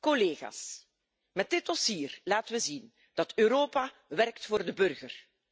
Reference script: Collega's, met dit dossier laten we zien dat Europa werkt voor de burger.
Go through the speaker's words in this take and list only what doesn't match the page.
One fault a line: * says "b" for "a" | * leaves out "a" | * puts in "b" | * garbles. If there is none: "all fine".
all fine